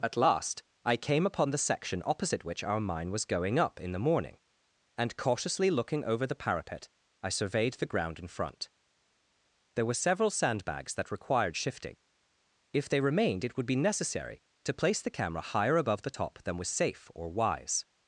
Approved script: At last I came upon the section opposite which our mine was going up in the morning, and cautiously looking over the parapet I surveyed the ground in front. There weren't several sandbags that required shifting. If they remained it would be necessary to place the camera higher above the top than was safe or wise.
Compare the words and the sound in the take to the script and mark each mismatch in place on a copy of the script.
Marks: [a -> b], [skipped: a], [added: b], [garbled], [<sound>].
At last I came upon the section opposite which our mine was going up in the morning, and cautiously looking over the parapet I surveyed the ground in front. There [weren't -> were] several sandbags that required shifting. If they remained it would be necessary to place the camera higher above the top than was safe or wise.